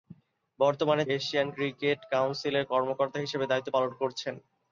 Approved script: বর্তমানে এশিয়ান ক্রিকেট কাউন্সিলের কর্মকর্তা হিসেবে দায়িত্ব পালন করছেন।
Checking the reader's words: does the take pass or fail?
pass